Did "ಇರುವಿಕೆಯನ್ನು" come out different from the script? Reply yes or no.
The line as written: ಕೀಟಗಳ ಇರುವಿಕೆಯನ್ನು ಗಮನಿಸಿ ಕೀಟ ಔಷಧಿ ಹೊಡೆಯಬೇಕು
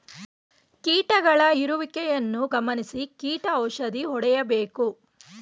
no